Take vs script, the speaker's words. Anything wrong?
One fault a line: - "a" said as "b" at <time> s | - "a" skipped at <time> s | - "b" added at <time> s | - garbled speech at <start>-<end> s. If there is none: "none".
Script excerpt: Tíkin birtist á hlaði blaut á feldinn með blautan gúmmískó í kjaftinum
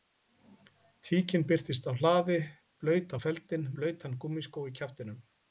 - "með" skipped at 3.7 s